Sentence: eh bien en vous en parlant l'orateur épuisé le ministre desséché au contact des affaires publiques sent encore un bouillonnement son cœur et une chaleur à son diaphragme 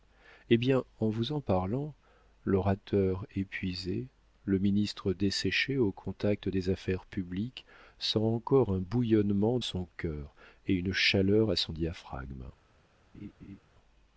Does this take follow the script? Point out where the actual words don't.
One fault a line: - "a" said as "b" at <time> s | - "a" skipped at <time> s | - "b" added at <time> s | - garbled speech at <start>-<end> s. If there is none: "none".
none